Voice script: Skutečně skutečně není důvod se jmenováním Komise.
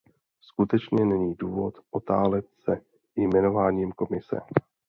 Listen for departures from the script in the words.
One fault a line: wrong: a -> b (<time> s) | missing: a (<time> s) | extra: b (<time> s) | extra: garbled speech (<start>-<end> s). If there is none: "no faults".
missing: skutečně (1.1 s)
extra: otálet (1.9 s)